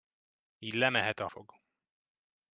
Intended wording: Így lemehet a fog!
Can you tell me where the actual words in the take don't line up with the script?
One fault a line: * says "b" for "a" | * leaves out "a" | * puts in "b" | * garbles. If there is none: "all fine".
all fine